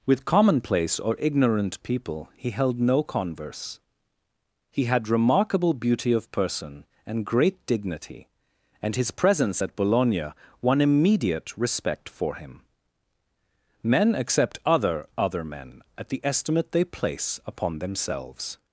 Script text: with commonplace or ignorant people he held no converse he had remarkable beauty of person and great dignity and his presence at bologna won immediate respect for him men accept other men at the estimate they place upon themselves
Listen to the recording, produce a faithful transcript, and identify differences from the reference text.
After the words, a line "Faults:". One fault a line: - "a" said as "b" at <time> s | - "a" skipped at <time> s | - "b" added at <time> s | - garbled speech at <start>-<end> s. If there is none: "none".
with commonplace or ignorant people he held no converse he had remarkable beauty of person and great dignity and his presence at bologna won immediate respect for him men accept other other men at the estimate they place upon themselves
Faults:
- "other" added at 15.2 s